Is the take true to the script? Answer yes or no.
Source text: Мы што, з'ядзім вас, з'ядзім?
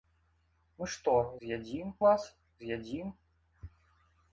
yes